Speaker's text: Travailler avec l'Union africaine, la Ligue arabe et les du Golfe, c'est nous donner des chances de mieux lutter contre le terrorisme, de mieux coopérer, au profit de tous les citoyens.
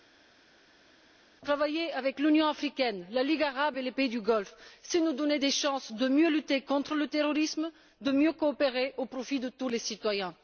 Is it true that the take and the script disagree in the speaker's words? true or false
true